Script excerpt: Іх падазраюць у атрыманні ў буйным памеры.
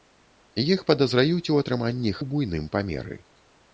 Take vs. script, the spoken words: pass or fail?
pass